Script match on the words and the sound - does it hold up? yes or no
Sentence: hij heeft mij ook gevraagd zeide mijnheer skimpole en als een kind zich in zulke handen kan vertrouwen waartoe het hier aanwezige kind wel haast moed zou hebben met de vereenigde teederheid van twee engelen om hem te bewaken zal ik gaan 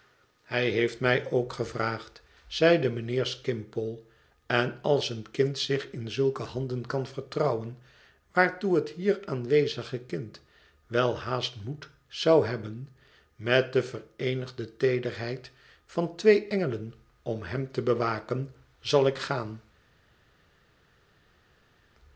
yes